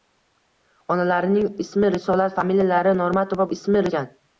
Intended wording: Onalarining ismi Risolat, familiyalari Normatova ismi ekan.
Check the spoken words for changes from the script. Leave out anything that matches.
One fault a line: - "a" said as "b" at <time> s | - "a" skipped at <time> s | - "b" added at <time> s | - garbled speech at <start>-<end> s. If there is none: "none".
none